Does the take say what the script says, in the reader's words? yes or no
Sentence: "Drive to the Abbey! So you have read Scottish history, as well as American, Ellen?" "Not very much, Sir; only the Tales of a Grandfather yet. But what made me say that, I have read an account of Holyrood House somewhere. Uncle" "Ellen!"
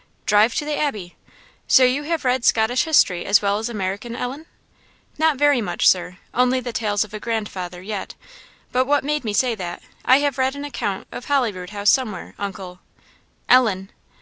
yes